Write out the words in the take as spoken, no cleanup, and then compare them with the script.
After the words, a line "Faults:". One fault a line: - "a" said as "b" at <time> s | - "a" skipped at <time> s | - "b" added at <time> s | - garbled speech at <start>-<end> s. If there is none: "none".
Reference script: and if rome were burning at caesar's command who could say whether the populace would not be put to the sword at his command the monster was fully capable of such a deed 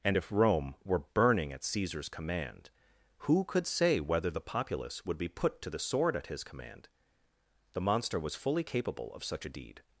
and if rome were burning at caesar's command who could say whether the populace would be put to the sword at his command the monster was fully capable of such a deed
Faults:
- "not" skipped at 5.2 s